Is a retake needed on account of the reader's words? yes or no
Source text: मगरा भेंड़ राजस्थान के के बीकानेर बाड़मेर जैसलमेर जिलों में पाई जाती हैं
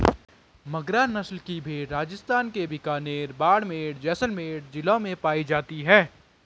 yes